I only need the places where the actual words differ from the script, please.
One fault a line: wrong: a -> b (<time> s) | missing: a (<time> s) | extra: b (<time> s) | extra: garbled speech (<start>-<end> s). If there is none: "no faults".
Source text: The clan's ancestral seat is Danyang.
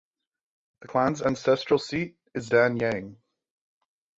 no faults